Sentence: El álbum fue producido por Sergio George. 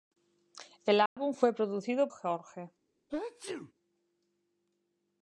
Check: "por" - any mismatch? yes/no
yes